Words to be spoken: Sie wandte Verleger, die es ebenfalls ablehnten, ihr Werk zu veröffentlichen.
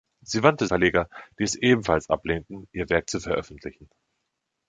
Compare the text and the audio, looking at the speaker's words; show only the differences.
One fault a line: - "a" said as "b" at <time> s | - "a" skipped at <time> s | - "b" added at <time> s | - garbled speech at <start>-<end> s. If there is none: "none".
none